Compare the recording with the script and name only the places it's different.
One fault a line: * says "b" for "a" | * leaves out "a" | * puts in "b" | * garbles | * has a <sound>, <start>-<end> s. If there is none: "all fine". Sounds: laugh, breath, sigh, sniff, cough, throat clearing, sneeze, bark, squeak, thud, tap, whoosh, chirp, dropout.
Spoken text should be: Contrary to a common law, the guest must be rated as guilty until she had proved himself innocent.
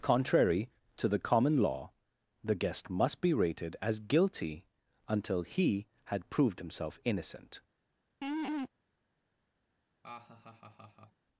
* says "the" for "a"
* says "he" for "she"
* has a laugh, 8.2-8.7 s
* has a laugh, 10.0-11.3 s